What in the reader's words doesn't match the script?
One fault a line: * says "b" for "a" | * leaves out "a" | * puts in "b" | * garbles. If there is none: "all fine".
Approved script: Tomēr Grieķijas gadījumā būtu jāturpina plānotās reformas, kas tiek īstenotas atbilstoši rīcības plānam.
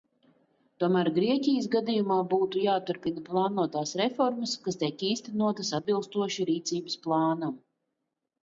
all fine